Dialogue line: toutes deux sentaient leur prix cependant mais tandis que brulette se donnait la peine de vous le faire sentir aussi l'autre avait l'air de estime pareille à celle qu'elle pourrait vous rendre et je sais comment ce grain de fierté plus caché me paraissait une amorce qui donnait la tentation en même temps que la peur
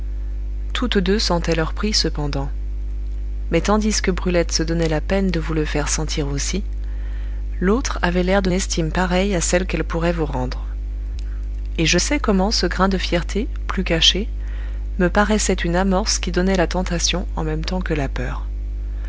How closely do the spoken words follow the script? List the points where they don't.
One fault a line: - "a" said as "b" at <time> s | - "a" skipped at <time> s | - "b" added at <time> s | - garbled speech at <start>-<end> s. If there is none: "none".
none